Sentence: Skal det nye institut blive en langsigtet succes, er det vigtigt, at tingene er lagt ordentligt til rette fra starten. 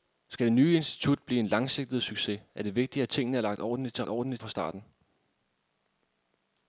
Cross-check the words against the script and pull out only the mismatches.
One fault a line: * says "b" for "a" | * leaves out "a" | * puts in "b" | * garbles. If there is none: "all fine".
* says "ordentligt" for "rette"